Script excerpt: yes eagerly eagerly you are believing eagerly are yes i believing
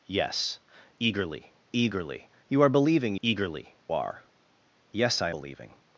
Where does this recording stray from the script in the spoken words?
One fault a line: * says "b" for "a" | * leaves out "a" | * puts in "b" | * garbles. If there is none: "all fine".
all fine